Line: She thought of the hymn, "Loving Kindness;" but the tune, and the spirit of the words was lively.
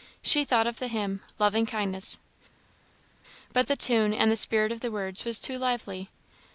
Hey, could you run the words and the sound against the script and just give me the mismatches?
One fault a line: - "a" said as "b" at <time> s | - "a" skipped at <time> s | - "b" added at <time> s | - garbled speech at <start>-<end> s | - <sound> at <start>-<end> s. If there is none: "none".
- "too" added at 5.4 s